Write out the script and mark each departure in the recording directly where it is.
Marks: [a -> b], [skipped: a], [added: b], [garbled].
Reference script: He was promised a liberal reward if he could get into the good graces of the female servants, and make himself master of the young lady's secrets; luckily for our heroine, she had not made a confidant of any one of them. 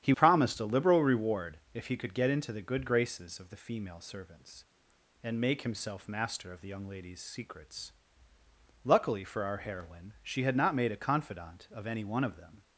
He [skipped: was] promised a liberal reward if he could get into the good graces of the female servants, and make himself master of the young lady's secrets; luckily for our heroine, she had not made a confidant of any one of them.